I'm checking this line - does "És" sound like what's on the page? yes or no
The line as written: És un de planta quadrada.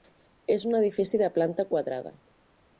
yes